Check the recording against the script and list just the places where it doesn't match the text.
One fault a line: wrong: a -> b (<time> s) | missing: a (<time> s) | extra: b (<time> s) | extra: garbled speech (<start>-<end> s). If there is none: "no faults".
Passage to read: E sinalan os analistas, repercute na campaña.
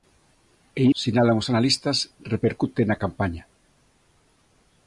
no faults